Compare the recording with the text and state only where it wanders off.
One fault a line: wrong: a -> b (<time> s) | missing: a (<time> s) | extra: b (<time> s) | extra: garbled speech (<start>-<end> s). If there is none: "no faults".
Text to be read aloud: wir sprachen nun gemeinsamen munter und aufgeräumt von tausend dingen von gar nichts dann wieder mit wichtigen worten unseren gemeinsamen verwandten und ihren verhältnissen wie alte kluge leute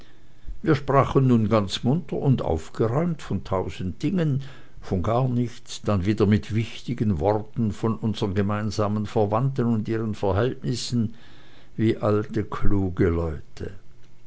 wrong: gemeinsamen -> ganz (1.5 s)
extra: von (7.7 s)